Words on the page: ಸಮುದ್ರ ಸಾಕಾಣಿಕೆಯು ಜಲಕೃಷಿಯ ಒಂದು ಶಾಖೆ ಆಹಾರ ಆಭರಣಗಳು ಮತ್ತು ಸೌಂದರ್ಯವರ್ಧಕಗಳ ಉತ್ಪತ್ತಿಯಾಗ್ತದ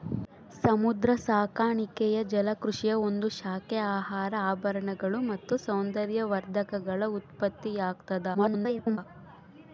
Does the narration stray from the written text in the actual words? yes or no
yes